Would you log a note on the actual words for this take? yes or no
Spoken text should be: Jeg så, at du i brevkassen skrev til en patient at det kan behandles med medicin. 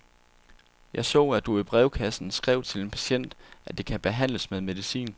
no